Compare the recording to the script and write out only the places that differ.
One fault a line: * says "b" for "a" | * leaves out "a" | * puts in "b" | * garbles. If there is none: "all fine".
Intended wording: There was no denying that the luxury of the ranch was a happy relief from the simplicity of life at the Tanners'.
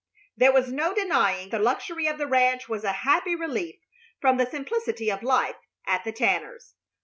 * leaves out "that"